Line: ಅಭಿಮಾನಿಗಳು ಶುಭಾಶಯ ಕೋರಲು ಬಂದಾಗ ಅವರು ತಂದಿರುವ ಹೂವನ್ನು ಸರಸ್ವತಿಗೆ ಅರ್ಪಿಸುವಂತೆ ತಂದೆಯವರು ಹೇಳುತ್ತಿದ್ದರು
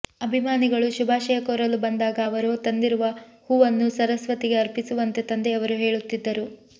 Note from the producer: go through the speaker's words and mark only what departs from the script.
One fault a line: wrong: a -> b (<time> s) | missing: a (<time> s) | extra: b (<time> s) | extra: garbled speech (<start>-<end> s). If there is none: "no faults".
no faults